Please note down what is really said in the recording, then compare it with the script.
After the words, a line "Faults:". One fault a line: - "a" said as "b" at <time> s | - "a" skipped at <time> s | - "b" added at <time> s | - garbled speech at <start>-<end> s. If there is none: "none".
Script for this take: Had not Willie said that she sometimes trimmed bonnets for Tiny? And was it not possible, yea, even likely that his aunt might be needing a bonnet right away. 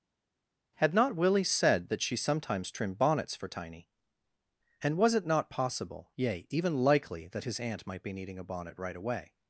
Had not Willie said that she sometimes trimmed bonnets for Tiny? And was it not possible, yea, even likely that his aunt might be needing a bonnet right away.
Faults:
none